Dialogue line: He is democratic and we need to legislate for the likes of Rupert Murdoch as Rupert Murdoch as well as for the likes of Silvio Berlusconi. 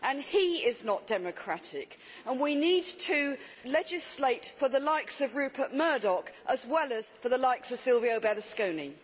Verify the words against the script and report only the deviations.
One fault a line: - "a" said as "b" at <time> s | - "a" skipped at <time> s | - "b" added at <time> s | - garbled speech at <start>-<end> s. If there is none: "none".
- "not" added at 0.8 s
- "Rupert Murdoch as" skipped at 6.7 s